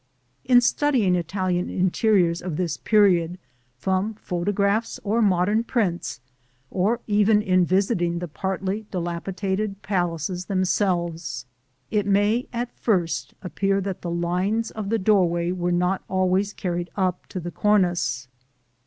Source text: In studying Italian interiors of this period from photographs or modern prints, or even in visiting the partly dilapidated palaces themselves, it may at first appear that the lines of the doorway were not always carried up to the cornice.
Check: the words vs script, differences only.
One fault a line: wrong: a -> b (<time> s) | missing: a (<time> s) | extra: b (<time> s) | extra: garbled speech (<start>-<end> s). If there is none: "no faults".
no faults